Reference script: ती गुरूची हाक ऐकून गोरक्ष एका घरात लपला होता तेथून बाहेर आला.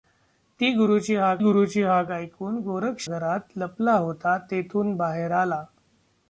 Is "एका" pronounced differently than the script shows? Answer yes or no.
yes